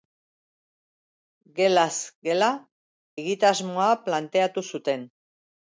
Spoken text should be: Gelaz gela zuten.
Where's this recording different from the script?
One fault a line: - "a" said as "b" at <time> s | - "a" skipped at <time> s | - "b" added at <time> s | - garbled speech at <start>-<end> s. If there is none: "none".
- "egitasmoa planteatu" added at 3.2 s